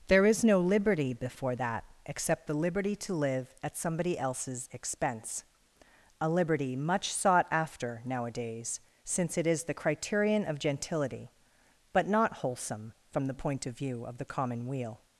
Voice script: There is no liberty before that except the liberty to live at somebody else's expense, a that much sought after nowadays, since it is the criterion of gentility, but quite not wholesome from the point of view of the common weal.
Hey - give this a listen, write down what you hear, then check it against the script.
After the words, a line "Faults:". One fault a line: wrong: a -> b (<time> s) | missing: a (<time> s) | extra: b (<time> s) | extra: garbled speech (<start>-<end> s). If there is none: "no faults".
There is no liberty before that except the liberty to live at somebody else's expense, a liberty much sought after nowadays, since it is the criterion of gentility, but not wholesome from the point of view of the common weal.
Faults:
wrong: that -> liberty (6.3 s)
missing: quite (12.1 s)